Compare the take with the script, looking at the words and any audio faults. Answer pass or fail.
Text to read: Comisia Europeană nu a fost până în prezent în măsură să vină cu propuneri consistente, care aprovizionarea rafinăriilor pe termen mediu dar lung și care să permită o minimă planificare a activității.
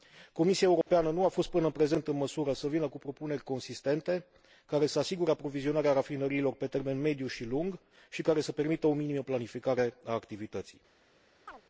fail